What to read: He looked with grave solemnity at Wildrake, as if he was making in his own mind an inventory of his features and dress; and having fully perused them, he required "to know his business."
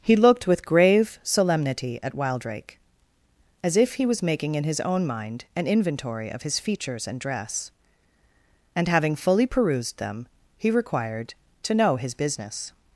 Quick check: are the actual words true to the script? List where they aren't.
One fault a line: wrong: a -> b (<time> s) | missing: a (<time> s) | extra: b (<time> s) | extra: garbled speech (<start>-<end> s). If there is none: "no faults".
no faults